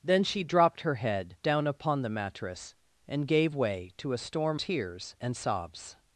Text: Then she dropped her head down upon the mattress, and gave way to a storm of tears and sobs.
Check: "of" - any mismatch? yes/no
yes